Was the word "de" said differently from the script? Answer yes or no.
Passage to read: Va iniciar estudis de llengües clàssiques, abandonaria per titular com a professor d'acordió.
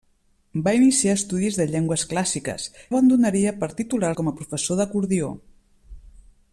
no